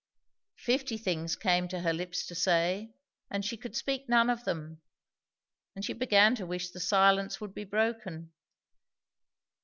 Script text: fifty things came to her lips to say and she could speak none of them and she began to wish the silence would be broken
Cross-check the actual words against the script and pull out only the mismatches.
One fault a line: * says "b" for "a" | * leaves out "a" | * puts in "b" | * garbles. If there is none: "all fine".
all fine